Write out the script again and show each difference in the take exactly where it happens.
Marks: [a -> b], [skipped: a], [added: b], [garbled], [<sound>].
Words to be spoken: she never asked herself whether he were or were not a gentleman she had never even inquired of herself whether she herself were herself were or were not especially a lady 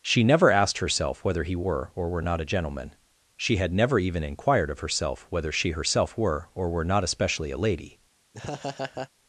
she never asked herself whether he were or were not a gentleman she had never even inquired of herself whether she herself were [skipped: herself were] or were not especially a lady [laugh]